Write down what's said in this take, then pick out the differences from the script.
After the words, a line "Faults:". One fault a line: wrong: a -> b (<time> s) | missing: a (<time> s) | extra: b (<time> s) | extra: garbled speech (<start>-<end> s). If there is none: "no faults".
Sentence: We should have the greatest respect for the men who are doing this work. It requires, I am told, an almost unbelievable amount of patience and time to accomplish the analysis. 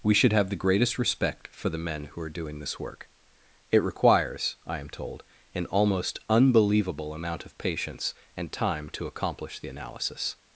We should have the greatest respect for the men who are doing this work. It requires, I am told, an almost unbelievable amount of patience and time to accomplish the analysis.
Faults:
no faults